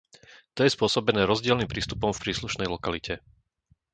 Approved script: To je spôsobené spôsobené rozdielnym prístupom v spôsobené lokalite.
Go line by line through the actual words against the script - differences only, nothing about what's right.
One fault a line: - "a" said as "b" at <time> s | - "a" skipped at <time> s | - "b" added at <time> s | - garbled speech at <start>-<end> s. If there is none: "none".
- "spôsobené" skipped at 1.3 s
- "spôsobené" said as "príslušnej" at 2.2 s